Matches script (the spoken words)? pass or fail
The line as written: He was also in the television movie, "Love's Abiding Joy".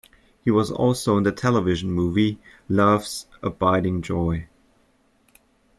pass